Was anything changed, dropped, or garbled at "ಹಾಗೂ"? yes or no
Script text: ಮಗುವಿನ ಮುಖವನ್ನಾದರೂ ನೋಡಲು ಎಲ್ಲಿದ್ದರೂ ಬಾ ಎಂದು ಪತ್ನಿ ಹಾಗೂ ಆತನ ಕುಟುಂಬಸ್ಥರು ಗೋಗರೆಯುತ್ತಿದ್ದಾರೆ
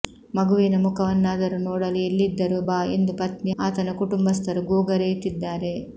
yes